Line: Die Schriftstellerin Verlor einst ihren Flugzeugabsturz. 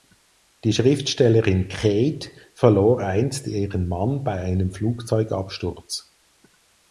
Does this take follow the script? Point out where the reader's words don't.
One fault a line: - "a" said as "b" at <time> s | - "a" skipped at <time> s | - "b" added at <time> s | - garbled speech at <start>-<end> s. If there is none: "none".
- "Kate" added at 1.7 s
- "Mann bei einem" added at 3.9 s